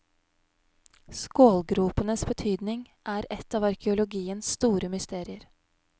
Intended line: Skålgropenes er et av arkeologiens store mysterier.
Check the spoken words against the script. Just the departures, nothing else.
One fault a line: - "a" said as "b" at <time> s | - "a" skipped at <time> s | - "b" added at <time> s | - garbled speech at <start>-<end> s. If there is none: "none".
- "betydning" added at 2.3 s